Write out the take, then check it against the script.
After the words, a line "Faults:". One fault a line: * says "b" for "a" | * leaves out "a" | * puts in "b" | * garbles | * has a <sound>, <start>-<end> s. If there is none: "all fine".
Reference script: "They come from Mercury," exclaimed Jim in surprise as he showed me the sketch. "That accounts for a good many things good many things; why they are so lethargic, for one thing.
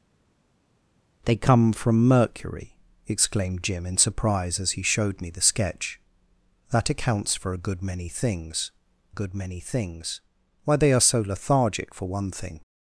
"They come from Mercury," exclaimed Jim in surprise as he showed me the sketch. "That accounts for a good many things good many things; why they are so lethargic, for one thing.
Faults:
all fine